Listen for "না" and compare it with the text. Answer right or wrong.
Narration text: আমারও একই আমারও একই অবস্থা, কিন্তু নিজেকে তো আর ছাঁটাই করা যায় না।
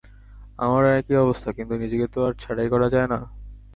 right